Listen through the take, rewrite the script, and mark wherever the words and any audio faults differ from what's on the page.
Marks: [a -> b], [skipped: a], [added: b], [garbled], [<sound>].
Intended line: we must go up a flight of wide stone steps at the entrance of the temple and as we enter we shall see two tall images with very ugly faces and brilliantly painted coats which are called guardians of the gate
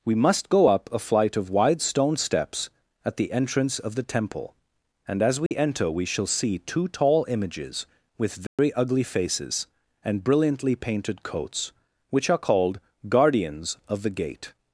we must go up a flight of wide stone steps at the entrance of the temple and as we [dropout] enter we shall see two tall images with very [dropout] ugly faces and brilliantly painted coats which are called guardians of the gate